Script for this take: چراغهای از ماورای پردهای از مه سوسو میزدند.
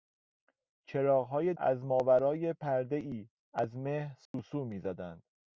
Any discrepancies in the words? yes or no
no